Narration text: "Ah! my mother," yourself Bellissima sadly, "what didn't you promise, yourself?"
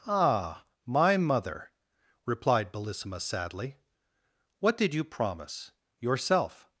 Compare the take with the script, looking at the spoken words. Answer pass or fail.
fail